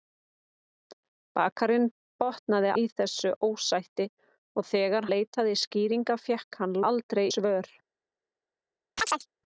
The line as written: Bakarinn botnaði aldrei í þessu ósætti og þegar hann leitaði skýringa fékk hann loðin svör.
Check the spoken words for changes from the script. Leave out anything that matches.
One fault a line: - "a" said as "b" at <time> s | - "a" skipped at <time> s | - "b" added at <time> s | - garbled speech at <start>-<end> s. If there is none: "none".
- "aldrei" skipped at 2.7 s
- "hann" skipped at 5.1 s
- "loðin" said as "aldrei" at 6.9 s